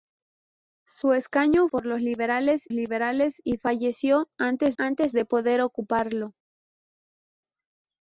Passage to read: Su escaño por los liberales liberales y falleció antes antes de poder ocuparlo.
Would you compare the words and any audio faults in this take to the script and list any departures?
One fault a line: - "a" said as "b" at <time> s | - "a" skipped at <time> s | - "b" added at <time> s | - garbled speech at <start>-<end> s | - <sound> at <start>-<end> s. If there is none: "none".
none